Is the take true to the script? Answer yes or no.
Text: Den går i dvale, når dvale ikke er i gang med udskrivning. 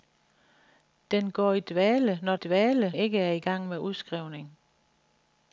yes